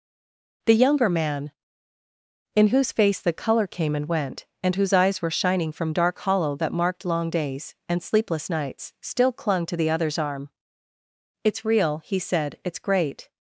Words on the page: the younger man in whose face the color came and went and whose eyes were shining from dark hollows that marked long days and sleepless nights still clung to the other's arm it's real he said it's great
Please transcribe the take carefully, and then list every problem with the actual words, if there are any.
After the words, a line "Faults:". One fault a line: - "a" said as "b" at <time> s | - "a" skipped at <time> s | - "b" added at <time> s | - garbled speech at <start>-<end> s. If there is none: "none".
the younger man in whose face the color came and went and whose eyes were shining from dark hollow that marked long days and sleepless nights still clung to the other's arm it's real he said it's great
Faults:
- "hollows" said as "hollow" at 6.2 s